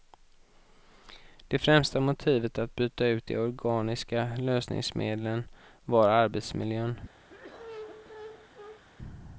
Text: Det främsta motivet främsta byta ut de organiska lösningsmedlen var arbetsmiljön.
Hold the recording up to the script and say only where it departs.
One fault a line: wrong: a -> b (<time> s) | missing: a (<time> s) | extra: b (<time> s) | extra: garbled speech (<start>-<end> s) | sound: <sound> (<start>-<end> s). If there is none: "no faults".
wrong: främsta -> att (2.6 s)
sound: cough (7.3-8.8 s)